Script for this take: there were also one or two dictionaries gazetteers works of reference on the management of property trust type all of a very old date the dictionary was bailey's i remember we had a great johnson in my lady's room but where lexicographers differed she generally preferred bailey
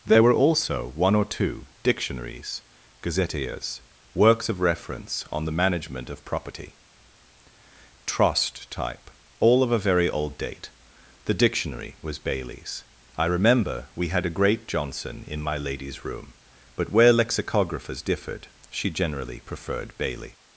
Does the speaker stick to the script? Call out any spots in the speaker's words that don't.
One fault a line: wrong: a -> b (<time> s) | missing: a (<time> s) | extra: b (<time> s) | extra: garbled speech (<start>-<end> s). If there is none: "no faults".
no faults